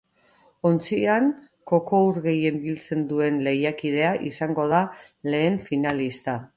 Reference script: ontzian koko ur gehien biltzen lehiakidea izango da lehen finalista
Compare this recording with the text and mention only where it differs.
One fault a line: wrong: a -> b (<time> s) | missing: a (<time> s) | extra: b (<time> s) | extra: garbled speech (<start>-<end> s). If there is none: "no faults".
extra: duen (3.1 s)